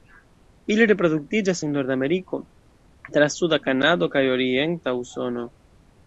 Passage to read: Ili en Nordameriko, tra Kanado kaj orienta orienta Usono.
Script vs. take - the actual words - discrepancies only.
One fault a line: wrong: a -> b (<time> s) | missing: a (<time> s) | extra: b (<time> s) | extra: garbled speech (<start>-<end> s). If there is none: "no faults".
extra: reproduktiĝas (0.9 s)
extra: suda (3.3 s)
missing: orienta (4.9 s)